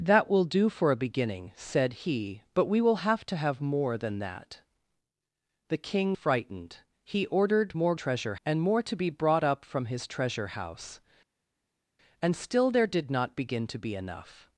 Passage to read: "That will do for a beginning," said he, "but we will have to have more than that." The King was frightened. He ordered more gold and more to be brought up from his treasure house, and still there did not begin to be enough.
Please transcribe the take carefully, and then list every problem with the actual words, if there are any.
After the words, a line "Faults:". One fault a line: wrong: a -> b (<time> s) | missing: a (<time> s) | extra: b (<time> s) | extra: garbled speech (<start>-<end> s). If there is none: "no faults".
"That will do for a beginning," said he, "but we will have to have more than that." The King frightened. He ordered more treasure and more to be brought up from his treasure house, and still there did not begin to be enough.
Faults:
missing: was (6.2 s)
wrong: gold -> treasure (7.9 s)